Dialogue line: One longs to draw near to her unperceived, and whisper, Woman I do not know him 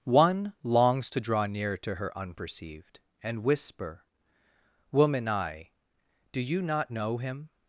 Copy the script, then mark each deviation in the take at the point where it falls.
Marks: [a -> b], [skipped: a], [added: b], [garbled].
One longs to draw near to her unperceived, and whisper, Woman I do [added: you] not know him